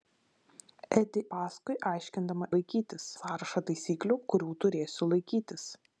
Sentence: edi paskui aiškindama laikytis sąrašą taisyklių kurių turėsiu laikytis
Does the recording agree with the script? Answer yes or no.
yes